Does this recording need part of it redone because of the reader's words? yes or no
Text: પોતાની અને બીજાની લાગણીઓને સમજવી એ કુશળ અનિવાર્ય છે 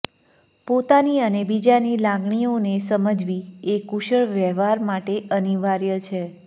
yes